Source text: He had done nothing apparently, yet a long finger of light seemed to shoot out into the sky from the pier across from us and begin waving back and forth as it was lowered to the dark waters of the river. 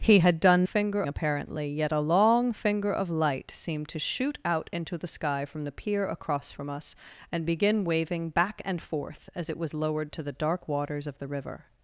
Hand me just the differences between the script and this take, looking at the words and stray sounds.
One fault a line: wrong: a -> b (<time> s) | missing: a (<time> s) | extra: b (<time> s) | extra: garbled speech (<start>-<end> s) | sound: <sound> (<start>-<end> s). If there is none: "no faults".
wrong: nothing -> finger (0.6 s)